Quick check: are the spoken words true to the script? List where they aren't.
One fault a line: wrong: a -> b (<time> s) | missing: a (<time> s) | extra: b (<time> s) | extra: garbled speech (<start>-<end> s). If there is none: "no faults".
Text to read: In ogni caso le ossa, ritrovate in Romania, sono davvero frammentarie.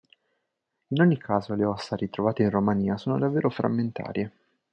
no faults